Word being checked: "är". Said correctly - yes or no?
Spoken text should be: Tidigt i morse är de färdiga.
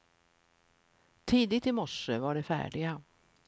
no